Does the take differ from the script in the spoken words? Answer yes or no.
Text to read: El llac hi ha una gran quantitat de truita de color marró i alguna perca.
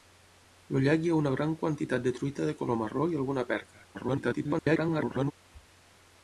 yes